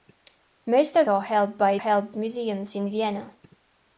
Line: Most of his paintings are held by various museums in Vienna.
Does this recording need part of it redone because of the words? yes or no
yes